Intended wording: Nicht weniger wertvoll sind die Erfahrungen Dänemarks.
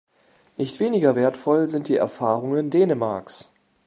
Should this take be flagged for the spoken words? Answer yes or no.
no